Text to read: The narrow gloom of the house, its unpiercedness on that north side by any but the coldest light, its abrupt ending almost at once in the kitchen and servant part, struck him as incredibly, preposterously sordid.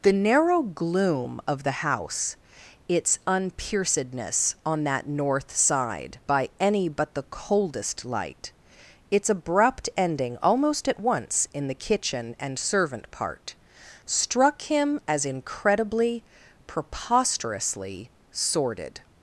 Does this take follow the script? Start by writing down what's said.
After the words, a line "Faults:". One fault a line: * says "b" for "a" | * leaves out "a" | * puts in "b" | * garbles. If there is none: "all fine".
The narrow gloom of the house, its unpiercedness on that north side by any but the coldest light, its abrupt ending almost at once in the kitchen and servant part, struck him as incredibly, preposterously sordid.
Faults:
all fine